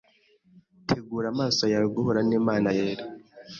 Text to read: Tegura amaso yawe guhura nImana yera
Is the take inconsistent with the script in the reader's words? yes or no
no